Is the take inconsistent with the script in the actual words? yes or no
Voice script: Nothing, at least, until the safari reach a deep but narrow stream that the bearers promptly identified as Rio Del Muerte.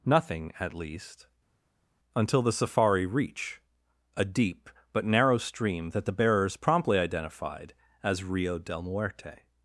no